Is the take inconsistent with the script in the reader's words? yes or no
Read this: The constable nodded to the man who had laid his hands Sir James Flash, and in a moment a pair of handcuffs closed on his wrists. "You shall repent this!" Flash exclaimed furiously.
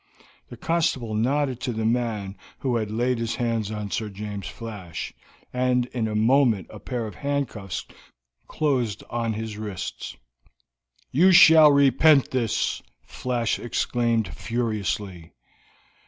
yes